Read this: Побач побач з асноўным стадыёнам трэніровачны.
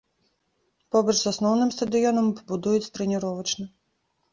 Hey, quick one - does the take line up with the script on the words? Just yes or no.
no